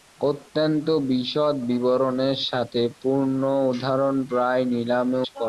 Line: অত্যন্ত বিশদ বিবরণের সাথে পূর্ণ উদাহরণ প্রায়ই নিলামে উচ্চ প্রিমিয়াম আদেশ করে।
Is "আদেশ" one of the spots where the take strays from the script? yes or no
yes